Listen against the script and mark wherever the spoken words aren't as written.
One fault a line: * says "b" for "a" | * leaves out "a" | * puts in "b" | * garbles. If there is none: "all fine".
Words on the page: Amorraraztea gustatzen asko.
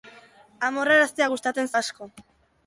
all fine